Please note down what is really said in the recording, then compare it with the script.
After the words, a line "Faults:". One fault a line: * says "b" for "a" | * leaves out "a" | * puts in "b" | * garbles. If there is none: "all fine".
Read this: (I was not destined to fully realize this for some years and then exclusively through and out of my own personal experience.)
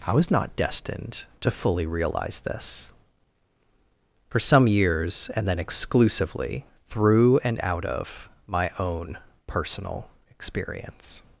(I was not destined to fully realize this for some years and then exclusively through and out of my own personal experience.)
Faults:
all fine